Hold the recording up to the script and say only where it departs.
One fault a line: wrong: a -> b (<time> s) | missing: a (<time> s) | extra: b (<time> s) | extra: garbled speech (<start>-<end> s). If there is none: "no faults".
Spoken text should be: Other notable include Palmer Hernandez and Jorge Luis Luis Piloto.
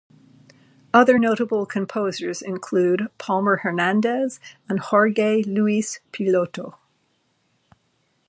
extra: composers (1.6 s)
missing: Luis (6.0 s)